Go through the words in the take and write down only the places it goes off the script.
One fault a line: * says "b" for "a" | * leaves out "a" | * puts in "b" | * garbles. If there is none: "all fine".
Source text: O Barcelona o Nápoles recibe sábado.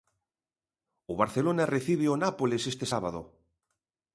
* puts in "recibe"
* says "este" for "recibe"